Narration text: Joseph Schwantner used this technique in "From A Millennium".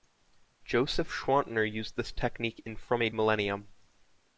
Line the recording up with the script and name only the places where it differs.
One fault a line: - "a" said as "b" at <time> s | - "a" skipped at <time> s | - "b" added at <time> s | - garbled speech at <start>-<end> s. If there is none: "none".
none